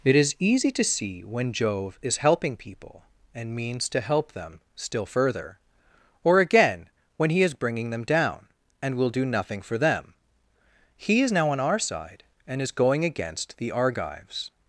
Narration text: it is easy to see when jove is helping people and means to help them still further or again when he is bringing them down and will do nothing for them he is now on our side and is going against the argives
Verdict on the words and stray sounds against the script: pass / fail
pass